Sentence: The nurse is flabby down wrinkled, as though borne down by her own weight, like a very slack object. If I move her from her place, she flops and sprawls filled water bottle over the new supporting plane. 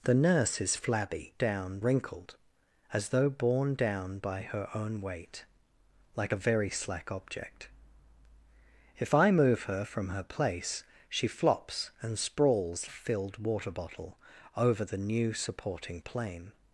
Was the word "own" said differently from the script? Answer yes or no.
no